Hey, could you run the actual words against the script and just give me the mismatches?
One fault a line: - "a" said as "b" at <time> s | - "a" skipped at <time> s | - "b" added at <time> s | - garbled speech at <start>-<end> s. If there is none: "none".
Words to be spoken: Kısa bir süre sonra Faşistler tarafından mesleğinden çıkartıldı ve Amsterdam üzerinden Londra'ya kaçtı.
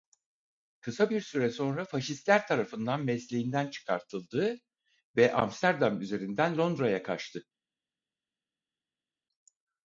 none